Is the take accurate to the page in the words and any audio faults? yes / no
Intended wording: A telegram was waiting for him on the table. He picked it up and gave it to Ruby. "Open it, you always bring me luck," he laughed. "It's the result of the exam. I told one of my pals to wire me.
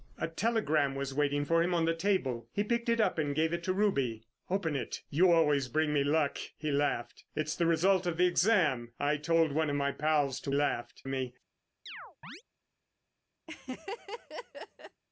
no